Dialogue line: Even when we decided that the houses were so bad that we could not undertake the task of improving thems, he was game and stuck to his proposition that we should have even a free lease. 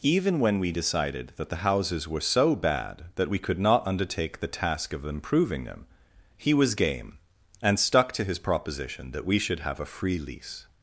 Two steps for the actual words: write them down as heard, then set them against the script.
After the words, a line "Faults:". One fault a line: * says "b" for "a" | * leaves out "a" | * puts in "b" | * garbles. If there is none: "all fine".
Even when we decided that the houses were so bad that we could not undertake the task of improving them, he was game and stuck to his proposition that we should have a free lease.
Faults:
* says "them" for "thems"
* leaves out "even"